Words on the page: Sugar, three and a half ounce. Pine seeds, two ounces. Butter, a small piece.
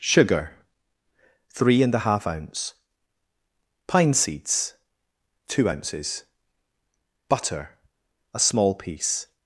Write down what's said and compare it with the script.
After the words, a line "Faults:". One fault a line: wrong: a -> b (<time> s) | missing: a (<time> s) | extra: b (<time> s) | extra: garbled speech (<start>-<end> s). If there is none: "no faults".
Sugar, three and a half ounce. Pine seeds, two ounces. Butter, a small piece.
Faults:
no faults